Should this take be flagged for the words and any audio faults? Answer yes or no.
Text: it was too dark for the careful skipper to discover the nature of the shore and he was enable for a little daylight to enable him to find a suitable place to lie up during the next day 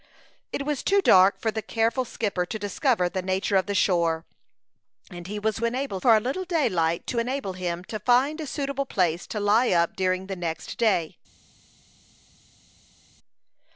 no